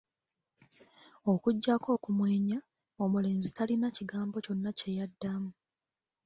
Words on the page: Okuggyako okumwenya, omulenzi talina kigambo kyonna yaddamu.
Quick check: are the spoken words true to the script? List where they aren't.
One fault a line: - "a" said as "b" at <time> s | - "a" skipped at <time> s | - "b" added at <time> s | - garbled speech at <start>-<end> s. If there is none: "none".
- "kye" added at 4.8 s